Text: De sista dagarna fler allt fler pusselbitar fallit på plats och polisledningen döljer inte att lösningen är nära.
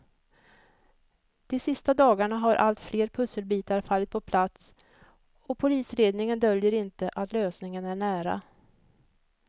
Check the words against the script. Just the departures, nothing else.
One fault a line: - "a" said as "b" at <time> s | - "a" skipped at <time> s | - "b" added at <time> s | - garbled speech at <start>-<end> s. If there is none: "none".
- "fler" said as "har" at 2.4 s